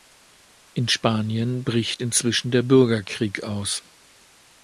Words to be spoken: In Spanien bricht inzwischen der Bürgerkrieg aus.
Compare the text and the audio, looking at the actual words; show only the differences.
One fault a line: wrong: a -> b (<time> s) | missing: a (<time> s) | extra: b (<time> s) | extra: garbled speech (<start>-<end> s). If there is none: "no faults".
no faults